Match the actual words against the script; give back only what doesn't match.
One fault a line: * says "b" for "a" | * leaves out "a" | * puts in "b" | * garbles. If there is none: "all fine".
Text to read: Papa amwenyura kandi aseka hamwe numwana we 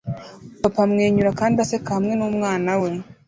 all fine